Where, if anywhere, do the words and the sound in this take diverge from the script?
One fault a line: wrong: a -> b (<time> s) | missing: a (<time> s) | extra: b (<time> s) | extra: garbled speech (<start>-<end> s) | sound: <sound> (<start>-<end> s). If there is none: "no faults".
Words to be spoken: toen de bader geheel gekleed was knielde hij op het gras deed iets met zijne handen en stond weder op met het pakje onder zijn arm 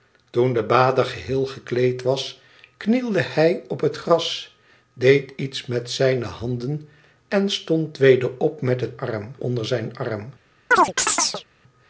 wrong: pakje -> arm (9.0 s)
sound: chirp (10.7-11.4 s)